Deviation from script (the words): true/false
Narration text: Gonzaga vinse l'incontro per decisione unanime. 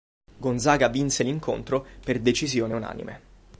false